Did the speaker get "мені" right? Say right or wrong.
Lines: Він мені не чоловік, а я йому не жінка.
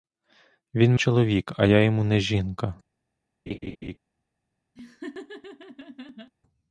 wrong